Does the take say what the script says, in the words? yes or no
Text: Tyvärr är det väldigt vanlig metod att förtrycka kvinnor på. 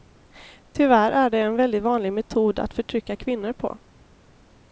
no